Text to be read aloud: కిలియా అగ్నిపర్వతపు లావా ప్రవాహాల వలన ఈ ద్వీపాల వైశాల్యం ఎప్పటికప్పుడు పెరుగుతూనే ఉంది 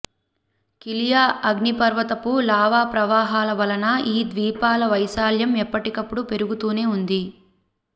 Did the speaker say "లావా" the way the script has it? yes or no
yes